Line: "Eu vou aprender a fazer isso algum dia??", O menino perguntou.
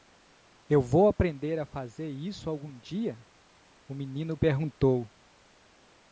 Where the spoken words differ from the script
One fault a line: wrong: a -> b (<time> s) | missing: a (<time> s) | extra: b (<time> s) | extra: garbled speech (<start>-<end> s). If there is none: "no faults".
no faults